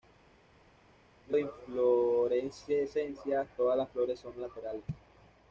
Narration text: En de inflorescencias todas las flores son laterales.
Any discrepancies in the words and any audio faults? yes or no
no